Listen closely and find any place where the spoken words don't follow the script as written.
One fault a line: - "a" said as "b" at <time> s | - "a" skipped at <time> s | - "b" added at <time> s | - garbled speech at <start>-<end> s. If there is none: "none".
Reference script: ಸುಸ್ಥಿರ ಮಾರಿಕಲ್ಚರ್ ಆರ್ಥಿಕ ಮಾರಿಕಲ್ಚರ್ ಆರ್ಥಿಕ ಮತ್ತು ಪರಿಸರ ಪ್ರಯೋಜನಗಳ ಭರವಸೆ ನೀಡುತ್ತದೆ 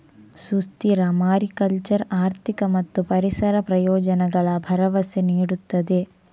- "ಮಾರಿಕಲ್ಚರ್ ಆರ್ಥಿಕ" skipped at 2.6 s